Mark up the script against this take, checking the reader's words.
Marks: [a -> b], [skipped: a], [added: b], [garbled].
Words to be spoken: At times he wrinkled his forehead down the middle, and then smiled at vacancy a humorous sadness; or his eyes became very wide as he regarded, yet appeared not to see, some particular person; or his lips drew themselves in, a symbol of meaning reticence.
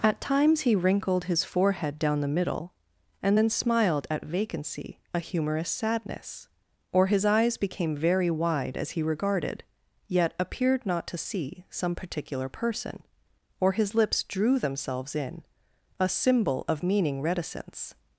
At times he wrinkled his forehead down the middle, and then smiled at vacancy a humorous sadness; or his eyes became very wide as he regarded, yet appeared not to see, some particular person; or his lips drew themselves in, a symbol of meaning reticence.